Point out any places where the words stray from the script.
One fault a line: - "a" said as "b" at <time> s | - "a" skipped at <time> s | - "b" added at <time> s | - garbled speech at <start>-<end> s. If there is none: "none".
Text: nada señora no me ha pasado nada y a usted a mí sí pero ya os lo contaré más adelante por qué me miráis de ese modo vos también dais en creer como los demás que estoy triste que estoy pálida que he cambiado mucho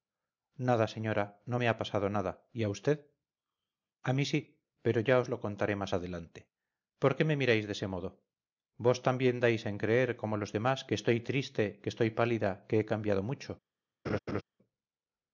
none